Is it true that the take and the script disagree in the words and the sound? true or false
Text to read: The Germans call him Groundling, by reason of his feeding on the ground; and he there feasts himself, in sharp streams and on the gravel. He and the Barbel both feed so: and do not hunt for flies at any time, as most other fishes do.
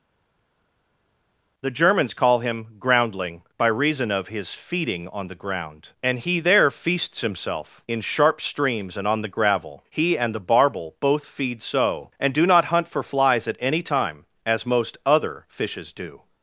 false